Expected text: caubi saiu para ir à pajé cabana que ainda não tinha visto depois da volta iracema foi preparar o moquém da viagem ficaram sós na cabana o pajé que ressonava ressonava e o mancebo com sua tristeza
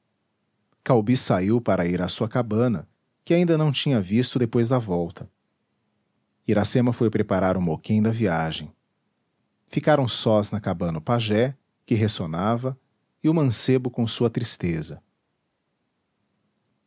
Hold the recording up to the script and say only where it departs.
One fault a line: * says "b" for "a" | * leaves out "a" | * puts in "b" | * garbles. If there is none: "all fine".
* says "sua" for "pajé"
* leaves out "ressonava"